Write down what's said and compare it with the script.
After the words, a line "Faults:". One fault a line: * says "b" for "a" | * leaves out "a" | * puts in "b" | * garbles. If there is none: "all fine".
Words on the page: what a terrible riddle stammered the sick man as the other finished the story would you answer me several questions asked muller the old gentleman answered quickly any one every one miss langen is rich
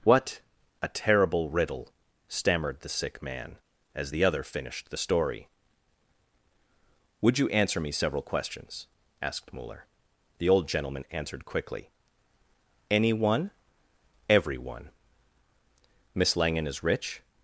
what a terrible riddle stammered the sick man as the other finished the story would you answer me several questions asked muller the old gentleman answered quickly any one every one miss langen is rich
Faults:
all fine